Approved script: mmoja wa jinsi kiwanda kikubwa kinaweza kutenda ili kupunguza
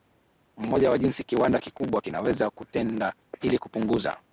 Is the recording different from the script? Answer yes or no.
no